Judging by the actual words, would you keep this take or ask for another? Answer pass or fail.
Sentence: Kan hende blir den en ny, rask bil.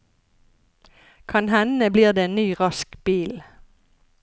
fail